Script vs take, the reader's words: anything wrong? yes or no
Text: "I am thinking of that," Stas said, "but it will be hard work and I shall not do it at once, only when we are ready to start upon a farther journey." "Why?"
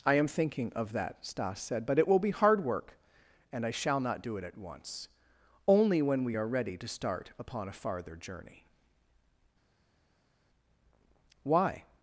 no